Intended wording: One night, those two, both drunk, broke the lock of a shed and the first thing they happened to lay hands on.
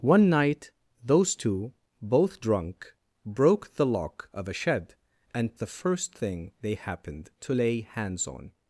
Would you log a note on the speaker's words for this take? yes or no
no